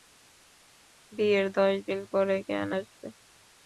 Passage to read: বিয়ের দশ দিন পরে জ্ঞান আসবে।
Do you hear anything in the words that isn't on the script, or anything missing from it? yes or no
no